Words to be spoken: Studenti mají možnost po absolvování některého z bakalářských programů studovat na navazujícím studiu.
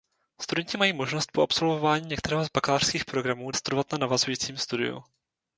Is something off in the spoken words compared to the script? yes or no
no